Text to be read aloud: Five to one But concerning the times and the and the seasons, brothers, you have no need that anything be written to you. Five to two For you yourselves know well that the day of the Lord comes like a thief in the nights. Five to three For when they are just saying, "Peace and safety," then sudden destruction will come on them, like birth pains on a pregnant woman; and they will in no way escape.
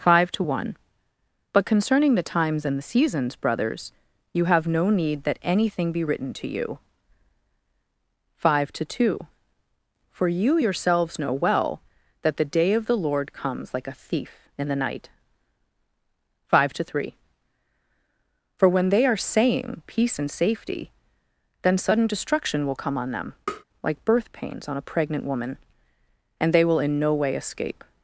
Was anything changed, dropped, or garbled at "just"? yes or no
yes